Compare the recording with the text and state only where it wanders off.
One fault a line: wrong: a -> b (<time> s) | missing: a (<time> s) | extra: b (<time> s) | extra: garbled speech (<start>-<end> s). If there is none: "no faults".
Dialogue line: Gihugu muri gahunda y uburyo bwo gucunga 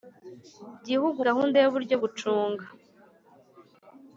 missing: muri (1.2 s)
missing: bwo (1.9 s)